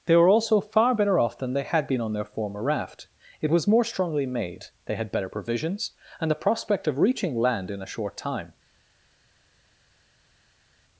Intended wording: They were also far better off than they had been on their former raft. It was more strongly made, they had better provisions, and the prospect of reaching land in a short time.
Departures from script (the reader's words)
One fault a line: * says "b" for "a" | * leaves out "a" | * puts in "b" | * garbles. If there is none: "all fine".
all fine